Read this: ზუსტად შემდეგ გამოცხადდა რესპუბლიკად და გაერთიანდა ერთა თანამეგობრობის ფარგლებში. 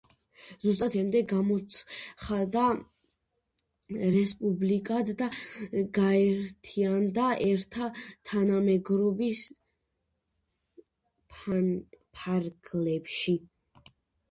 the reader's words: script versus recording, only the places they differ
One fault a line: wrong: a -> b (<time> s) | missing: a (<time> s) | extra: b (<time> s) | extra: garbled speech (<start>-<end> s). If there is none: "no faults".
no faults